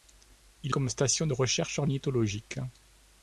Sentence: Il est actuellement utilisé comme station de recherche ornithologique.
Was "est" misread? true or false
true